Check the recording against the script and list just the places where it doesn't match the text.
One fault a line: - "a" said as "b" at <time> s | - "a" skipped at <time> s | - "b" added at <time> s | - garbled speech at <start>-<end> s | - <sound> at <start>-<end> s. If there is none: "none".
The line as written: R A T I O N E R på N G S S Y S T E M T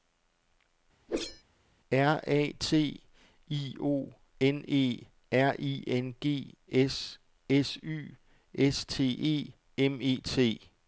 - whoosh at 1.1-1.4 s
- "på" said as "I" at 5.6 s
- "E" added at 10.0 s